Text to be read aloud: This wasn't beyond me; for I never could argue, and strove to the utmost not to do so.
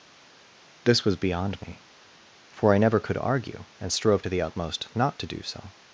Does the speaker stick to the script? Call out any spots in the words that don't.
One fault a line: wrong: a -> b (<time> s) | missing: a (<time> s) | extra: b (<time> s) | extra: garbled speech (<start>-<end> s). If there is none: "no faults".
wrong: wasn't -> was (1.0 s)